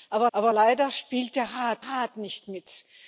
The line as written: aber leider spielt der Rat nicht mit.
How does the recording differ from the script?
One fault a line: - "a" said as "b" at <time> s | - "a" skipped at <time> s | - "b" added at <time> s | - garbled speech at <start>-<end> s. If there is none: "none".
- "aber" added at 0.3 s
- "Rat" added at 1.8 s